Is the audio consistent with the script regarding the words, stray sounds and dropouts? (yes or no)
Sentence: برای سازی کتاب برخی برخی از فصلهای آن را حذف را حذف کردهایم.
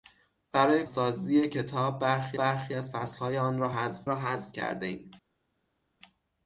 yes